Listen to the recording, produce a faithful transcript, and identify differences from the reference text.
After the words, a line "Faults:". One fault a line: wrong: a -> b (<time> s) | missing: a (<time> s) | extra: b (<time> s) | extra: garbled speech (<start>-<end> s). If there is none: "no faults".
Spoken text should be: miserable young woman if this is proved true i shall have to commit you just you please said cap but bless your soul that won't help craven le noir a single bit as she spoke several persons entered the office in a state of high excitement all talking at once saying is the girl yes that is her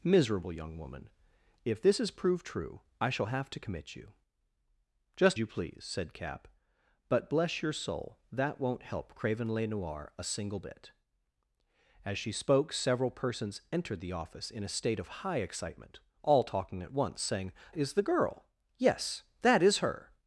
miserable young woman if this is proved true i shall have to commit you just you please said cap but bless your soul that won't help craven le noir a single bit as she spoke several persons entered the office in a state of high excitement all talking at once saying is the girl yes that is her
Faults:
no faults